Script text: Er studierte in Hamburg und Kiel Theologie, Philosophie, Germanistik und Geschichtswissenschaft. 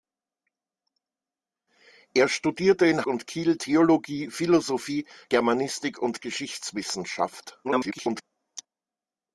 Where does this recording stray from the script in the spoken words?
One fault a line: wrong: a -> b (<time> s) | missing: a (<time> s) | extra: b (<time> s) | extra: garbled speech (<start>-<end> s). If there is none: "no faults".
missing: Hamburg (3.1 s)
extra: garbled speech (7.6-8.2 s)